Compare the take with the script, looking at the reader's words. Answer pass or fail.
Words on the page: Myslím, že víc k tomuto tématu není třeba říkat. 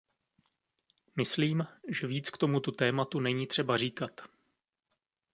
pass